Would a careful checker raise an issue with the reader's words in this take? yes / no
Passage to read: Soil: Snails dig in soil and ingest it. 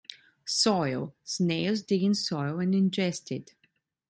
no